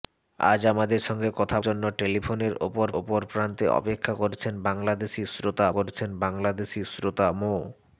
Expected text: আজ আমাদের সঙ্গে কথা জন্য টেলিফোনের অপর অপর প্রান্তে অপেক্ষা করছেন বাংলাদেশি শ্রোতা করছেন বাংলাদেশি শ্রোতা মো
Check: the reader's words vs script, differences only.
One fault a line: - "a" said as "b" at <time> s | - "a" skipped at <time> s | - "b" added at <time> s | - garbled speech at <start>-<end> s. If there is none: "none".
none